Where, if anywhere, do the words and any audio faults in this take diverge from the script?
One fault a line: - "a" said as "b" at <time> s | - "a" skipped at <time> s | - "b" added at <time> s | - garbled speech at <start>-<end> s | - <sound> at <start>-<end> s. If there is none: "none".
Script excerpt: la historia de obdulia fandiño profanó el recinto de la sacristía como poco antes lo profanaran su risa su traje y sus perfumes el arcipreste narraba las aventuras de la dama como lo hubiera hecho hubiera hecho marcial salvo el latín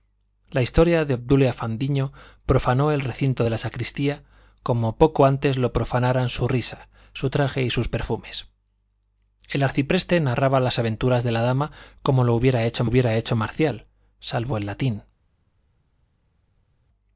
none